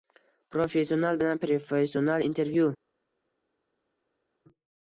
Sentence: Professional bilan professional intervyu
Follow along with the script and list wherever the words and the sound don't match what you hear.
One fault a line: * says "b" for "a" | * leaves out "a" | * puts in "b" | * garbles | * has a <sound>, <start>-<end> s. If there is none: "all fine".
all fine